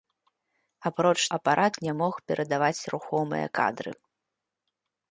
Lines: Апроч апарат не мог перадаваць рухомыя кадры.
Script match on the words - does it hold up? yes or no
yes